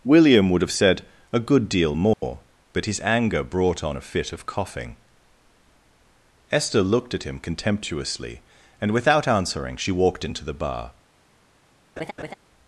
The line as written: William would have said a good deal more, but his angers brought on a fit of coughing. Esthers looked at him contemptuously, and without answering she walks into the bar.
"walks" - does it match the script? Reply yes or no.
no